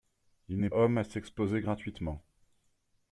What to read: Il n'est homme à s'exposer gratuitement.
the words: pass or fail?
pass